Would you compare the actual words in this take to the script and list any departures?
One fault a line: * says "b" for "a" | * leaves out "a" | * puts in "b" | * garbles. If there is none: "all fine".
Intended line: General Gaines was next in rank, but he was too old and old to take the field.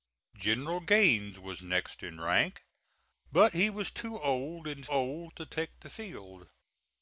all fine